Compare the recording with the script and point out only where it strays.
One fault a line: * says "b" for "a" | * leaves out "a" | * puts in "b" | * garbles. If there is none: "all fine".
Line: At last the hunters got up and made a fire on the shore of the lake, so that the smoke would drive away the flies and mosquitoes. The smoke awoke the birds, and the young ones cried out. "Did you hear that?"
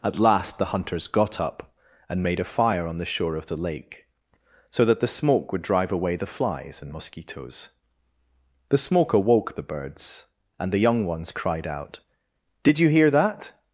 all fine